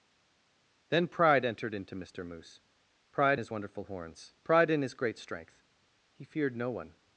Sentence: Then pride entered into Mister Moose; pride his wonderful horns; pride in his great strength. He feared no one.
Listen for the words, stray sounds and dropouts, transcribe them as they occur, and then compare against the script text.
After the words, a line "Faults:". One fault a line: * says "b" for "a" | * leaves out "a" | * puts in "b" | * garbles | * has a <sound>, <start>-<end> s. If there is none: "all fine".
Then pride entered into Mister Moose; pride his wonderful horns; pride in his great strength. He feared no one.
Faults:
all fine